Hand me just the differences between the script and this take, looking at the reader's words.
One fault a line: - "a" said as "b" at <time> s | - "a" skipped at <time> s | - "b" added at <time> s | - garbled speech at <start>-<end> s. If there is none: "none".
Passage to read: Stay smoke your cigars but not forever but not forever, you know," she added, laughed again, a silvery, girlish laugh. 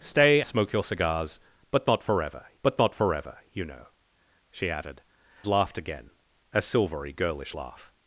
none